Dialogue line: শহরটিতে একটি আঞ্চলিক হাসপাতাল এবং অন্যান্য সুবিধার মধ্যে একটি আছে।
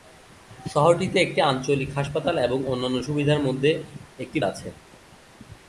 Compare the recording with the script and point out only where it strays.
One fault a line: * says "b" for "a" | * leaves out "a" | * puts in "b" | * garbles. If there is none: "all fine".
all fine